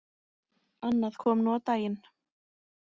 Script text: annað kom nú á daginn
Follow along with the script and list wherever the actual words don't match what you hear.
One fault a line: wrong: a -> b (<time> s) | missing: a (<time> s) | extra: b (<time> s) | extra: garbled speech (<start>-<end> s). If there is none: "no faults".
no faults